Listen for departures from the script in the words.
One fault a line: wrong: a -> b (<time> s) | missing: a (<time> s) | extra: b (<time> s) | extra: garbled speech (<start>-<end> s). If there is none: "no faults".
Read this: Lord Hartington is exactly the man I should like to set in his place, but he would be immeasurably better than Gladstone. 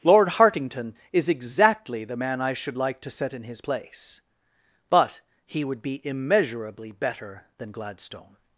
no faults